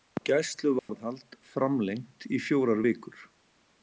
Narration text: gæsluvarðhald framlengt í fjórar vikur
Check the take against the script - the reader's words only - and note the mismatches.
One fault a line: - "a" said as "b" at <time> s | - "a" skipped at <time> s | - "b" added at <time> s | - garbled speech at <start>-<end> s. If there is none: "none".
none